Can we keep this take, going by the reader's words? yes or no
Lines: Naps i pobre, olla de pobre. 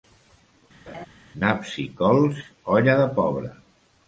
no